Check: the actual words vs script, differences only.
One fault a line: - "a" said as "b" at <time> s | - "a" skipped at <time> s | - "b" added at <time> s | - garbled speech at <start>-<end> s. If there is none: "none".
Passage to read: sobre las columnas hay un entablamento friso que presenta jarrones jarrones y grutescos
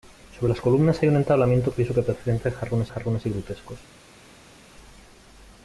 none